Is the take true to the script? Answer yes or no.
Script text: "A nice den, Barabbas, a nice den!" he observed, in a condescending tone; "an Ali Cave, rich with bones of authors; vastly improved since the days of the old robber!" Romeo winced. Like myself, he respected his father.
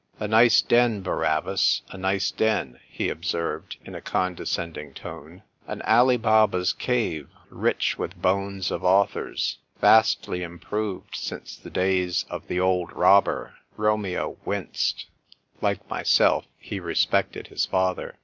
no